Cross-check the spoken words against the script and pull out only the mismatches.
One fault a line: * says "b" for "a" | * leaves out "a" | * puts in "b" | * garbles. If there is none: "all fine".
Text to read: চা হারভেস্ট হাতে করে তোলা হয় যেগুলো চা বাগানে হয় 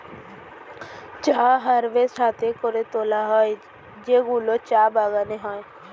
all fine